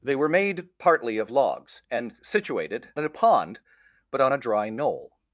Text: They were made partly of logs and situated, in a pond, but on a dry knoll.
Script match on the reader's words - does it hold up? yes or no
yes